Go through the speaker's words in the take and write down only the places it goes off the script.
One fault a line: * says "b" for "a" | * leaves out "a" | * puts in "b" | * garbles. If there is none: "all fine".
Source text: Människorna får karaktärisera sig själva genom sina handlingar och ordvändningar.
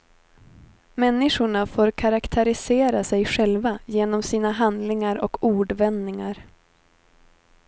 all fine